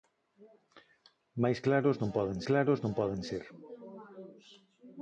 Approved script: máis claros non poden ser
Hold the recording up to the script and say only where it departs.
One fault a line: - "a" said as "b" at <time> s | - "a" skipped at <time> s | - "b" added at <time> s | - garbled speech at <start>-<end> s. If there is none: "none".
- "claros non poden" added at 2.5 s